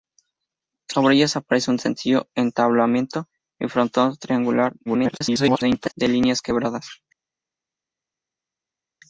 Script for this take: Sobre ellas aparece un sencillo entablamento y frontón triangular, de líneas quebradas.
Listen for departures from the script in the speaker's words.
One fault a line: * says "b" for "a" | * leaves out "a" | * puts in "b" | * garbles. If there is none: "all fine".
* garbles